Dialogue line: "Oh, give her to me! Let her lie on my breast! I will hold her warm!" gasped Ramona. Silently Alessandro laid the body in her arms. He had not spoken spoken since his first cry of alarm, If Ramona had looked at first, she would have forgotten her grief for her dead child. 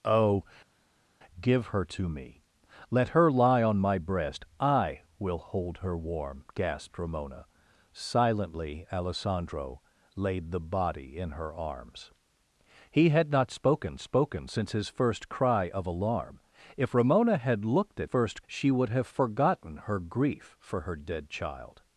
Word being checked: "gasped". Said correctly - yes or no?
yes